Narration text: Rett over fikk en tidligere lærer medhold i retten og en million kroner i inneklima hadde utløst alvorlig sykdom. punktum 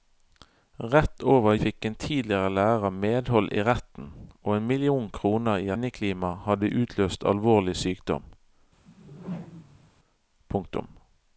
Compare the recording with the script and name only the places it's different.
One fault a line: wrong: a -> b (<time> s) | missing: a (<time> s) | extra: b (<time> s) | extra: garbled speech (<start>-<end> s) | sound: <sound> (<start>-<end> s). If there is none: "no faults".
sound: whoosh (8.8-9.9 s)